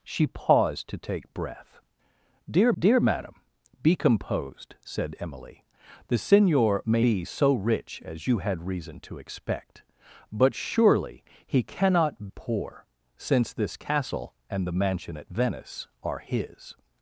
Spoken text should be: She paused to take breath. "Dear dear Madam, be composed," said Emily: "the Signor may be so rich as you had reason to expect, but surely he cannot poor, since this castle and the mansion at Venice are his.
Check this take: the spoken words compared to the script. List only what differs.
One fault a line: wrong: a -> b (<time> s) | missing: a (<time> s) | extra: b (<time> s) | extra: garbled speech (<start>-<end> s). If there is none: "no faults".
no faults